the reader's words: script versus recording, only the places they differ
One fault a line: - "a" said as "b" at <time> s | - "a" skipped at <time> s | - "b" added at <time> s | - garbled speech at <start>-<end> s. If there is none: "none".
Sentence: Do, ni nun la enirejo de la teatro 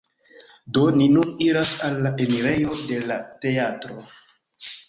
- "iras al" added at 1.5 s